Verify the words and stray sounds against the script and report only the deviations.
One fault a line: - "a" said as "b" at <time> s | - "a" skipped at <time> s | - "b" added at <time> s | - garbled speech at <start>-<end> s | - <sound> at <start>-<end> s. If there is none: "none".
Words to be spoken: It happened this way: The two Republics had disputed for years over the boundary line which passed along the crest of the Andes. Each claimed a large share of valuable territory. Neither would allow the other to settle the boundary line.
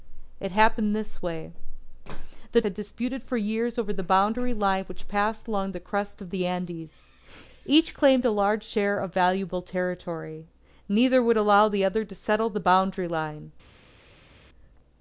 - "two Republics" skipped at 2.6 s